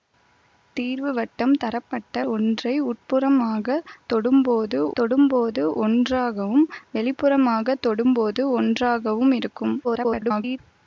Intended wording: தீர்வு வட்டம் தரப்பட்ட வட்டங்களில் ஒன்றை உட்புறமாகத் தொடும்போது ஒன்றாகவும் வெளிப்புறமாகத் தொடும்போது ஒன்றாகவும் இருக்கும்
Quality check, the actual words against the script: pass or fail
fail